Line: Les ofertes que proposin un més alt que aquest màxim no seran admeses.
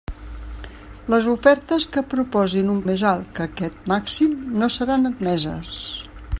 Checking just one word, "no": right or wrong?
right